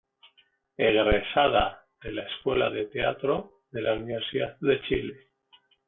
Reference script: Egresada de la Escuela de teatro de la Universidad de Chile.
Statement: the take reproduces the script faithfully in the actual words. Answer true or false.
true